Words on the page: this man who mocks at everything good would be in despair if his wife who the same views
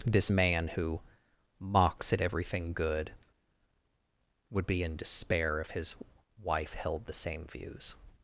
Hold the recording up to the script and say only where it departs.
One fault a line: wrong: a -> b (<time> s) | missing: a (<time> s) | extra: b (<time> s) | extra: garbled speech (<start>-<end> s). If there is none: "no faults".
wrong: who -> held (6.7 s)